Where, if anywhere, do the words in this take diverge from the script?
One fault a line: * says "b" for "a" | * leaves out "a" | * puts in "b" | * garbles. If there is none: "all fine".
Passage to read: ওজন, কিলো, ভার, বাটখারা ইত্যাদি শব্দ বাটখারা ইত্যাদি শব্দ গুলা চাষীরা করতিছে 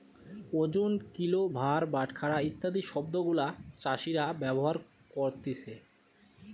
* leaves out "বাটখারা ইত্যাদি শব্দ"
* puts in "ব্যবহার"